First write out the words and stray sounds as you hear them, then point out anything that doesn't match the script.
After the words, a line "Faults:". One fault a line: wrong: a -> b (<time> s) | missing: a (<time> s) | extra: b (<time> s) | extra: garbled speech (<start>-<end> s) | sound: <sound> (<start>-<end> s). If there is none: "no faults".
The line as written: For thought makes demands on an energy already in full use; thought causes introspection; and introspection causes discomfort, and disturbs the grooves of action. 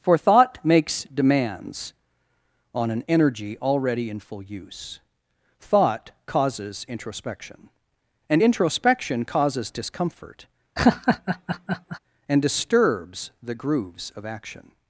For thought makes demands on an energy already in full use; thought causes introspection; and introspection causes discomfort, and disturbs the grooves of action.
Faults:
sound: laugh (10.8-12.0 s)